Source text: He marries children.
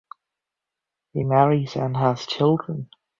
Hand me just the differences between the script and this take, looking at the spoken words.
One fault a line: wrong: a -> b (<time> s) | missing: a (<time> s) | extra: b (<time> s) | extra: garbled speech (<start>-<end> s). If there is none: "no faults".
extra: and has (1.7 s)